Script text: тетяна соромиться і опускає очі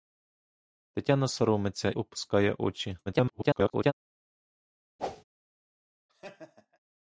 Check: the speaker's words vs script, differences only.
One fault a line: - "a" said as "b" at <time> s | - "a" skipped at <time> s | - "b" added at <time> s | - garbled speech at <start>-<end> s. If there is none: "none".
- "і" skipped at 1.9 s
- garbled speech at 3.1-3.9 s